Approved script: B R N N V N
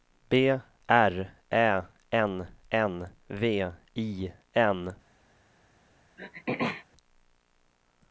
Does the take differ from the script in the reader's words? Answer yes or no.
yes